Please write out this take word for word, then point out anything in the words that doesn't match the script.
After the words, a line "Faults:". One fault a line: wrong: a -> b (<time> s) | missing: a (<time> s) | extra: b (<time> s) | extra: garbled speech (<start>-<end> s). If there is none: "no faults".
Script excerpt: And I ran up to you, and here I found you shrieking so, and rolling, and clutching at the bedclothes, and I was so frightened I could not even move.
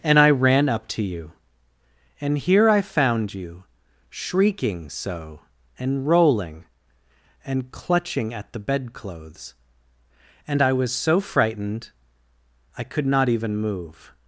And I ran up to you, and here I found you shrieking so, and rolling, and clutching at the bedclothes, and I was so frightened I could not even move.
Faults:
no faults